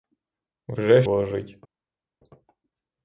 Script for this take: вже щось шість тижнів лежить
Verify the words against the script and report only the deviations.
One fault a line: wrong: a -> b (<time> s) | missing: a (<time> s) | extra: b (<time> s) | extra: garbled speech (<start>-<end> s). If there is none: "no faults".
missing: щось шість тижнів (1.0 s)